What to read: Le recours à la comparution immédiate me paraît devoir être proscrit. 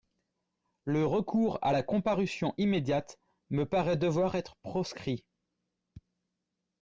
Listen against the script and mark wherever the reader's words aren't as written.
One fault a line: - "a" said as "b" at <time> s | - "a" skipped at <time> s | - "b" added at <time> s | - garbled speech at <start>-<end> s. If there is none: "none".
none